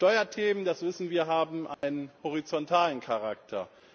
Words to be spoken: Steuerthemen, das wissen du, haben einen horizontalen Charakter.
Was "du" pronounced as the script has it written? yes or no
no